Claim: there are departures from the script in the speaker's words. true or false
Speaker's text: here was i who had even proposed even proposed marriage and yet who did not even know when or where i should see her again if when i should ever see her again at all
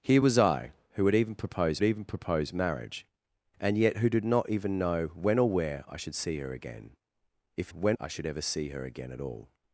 false